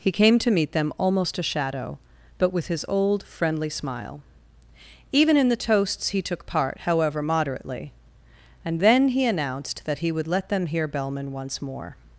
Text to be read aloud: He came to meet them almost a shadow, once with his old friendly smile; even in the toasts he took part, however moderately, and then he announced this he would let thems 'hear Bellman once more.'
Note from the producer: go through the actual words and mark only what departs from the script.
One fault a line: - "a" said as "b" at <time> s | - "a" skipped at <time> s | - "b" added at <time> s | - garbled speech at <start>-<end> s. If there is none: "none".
- "once" said as "but" at 2.4 s
- "this" said as "that" at 9.8 s
- "thems" said as "them" at 10.5 s